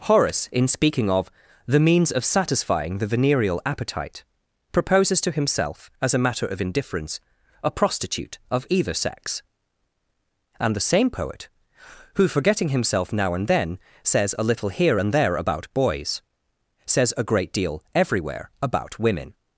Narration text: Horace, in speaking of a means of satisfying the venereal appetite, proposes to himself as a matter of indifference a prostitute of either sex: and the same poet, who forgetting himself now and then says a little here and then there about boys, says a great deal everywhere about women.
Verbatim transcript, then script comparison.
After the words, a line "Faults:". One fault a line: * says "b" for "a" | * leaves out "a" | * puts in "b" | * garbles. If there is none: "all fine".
Horace, in speaking of the means of satisfying the venereal appetite, proposes to himself as a matter of indifference a prostitute of either sex: and the same poet, who forgetting himself now and then says a little here and there about boys, says a great deal everywhere about women.
Faults:
* says "the" for "a"
* leaves out "then"